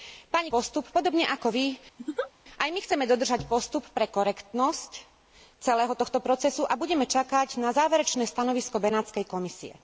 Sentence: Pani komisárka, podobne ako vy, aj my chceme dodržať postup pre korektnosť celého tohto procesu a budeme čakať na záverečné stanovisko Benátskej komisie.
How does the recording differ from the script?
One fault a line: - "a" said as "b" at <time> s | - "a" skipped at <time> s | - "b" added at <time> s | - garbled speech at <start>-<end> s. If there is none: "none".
- "komisárka" said as "postup" at 0.5 s